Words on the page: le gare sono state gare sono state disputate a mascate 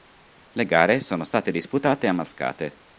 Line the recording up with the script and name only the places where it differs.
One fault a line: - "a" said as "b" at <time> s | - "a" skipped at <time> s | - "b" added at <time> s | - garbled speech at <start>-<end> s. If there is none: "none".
- "gare sono state" skipped at 1.5 s